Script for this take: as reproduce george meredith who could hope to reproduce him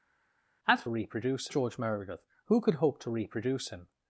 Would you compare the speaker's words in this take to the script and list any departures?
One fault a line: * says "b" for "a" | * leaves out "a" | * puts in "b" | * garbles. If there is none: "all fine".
all fine